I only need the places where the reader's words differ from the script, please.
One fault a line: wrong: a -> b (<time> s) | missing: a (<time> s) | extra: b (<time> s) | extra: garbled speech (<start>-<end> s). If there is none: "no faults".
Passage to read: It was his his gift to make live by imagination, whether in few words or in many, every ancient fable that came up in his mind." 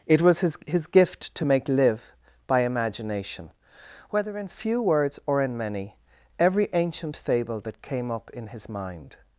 no faults